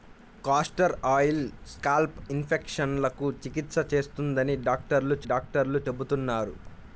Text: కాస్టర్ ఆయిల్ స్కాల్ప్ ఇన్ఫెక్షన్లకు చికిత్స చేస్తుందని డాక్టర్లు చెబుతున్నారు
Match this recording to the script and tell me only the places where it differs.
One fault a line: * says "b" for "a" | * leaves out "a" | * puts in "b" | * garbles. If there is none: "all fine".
* puts in "డాక్టర్లు"